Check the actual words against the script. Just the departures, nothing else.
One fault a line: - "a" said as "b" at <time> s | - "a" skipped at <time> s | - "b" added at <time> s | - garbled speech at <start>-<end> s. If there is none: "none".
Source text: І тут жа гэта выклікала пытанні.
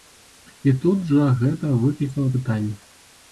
none